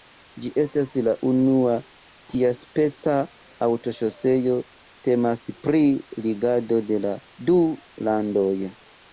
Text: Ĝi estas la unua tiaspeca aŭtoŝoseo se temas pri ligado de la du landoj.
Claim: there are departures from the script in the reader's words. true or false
true